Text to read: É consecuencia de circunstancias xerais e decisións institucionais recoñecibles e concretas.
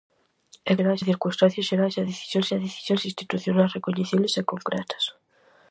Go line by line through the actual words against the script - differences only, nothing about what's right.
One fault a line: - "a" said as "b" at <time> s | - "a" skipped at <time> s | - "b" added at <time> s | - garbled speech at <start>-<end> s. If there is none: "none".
- "consecuencia" said as "xerais" at 0.8 s
- "e decisións" added at 2.5 s